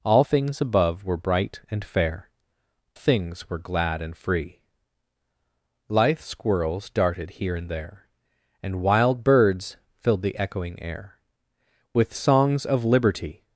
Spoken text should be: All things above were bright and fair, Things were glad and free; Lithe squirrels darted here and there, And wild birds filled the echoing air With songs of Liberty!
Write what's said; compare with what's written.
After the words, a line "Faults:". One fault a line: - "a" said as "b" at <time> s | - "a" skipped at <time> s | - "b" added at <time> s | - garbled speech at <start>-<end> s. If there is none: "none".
All things above were bright and fair, Things were glad and free; Lithe squirrels darted here and there, And wild birds filled the echoing air With songs of Liberty!
Faults:
none